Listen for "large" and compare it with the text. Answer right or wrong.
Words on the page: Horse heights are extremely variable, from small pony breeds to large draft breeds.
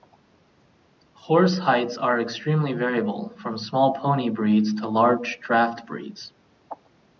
right